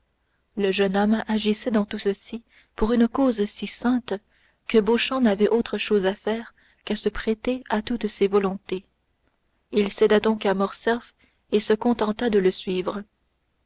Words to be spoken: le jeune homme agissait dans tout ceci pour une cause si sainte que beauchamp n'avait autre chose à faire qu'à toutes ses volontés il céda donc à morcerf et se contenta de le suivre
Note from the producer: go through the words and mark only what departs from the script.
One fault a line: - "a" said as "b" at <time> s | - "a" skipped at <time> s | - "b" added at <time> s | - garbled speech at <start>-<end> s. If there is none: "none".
- "se prêter à" added at 6.9 s